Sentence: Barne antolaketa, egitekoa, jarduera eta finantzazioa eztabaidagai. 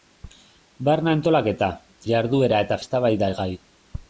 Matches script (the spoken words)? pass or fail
fail